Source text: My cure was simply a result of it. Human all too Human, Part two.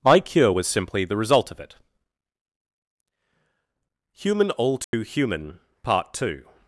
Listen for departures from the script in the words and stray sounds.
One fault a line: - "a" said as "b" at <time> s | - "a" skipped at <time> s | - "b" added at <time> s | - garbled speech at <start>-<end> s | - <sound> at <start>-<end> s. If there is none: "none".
- "a" said as "the" at 1.0 s
- dropout at 4.8-4.9 s